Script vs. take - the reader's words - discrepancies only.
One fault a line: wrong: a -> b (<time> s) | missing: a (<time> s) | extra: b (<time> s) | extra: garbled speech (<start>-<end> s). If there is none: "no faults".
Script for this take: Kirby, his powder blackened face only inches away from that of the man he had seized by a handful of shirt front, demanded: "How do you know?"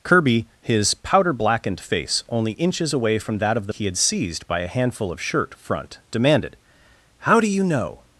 missing: man (3.7 s)